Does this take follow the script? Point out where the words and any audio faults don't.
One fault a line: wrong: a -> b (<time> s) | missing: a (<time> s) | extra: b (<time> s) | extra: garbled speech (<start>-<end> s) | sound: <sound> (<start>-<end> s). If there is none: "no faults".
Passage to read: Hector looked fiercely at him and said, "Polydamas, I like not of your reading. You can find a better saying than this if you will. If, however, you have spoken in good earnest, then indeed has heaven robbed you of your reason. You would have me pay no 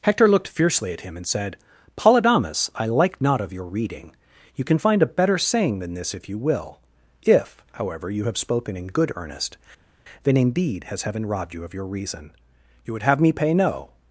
no faults